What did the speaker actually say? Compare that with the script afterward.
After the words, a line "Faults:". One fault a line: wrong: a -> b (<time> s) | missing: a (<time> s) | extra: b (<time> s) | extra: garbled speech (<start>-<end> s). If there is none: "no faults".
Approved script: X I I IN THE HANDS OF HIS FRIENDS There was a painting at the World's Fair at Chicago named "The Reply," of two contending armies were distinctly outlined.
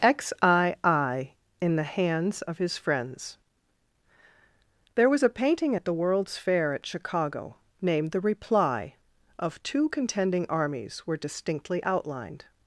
X I I IN THE HANDS OF HIS FRIENDS There was a painting at the World's Fair at Chicago named "The Reply," of two contending armies were distinctly outlined.
Faults:
no faults